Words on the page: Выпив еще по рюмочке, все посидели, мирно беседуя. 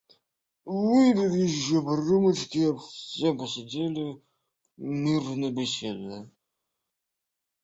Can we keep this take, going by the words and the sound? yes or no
yes